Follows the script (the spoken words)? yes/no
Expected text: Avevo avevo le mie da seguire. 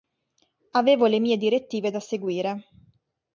no